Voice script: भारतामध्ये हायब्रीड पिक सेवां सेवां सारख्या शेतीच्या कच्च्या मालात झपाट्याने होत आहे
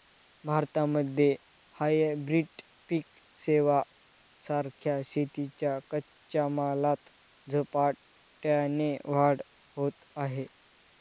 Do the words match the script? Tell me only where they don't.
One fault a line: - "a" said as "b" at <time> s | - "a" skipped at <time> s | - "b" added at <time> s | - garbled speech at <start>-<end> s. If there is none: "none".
- "सेवां" skipped at 3.8 s
- "वाढ" added at 9.1 s